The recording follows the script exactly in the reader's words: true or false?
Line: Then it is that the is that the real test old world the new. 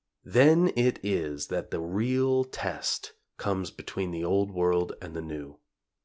false